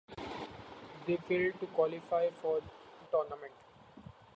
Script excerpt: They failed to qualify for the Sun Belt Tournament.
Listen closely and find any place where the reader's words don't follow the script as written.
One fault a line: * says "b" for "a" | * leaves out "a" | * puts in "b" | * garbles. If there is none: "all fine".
* leaves out "the Sun Belt"